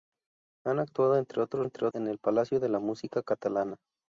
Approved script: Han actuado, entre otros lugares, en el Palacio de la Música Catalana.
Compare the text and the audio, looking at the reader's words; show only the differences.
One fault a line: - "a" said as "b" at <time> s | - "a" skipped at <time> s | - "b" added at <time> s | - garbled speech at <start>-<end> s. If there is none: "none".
- "lugares" said as "entre" at 1.6 s